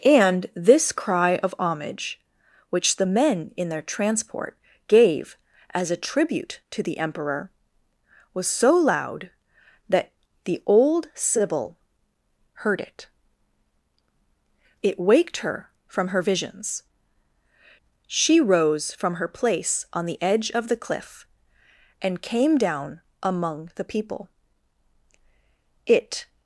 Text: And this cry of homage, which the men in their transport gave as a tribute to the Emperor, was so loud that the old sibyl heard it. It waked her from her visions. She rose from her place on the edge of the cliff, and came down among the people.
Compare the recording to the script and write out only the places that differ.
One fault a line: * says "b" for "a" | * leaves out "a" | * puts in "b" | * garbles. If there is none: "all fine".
* puts in "It"